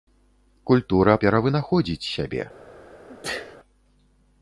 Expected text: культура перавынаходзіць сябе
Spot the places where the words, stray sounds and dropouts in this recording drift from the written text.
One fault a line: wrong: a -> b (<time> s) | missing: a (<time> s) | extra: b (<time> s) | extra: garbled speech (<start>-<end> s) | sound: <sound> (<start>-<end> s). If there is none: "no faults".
sound: sneeze (3.1-3.6 s)